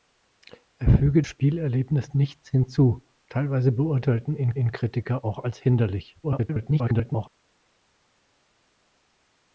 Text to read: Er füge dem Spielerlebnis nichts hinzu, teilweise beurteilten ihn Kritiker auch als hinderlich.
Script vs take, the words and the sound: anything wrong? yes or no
yes